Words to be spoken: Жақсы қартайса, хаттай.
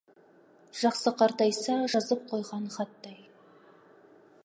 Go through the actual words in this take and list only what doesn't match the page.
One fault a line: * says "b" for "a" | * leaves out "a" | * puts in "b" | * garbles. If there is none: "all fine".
* puts in "жазып қойған"